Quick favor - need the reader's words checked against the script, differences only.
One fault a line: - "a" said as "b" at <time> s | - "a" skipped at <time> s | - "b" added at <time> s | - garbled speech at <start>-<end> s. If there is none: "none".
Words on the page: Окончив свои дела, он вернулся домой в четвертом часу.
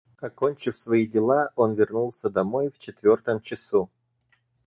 none